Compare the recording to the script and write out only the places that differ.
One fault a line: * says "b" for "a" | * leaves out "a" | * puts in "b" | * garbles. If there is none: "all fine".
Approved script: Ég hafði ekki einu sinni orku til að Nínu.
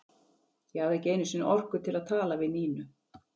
* puts in "tala við"